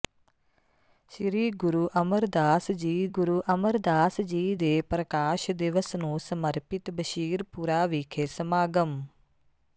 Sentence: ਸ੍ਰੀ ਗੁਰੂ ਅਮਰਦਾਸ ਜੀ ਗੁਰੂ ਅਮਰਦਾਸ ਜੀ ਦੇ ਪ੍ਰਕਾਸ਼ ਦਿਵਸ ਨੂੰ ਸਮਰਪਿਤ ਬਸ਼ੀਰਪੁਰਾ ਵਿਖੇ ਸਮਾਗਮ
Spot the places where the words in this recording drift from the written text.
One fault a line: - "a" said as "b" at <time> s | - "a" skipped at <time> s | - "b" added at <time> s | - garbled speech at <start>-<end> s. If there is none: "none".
none